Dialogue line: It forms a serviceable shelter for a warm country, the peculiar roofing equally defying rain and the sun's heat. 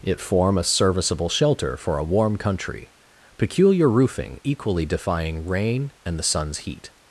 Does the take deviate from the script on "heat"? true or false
false